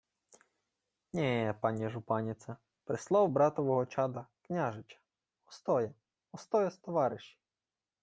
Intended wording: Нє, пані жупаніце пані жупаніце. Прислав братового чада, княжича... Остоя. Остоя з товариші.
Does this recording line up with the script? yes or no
no